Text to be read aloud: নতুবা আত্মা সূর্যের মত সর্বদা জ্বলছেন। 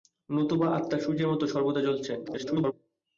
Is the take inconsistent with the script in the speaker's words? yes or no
yes